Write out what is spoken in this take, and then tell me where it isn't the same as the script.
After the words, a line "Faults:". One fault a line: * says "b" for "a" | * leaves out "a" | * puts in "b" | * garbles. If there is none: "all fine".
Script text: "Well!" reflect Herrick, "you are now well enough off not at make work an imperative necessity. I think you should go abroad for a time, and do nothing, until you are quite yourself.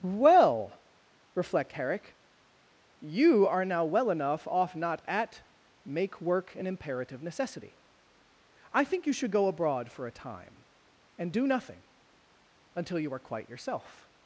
"Well!" reflect Herrick, "you are now well enough off not at make work an imperative necessity. I think you should go abroad for a time, and do nothing, until you are quite yourself.
Faults:
all fine